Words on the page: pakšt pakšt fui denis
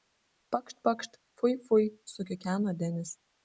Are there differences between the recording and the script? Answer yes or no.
yes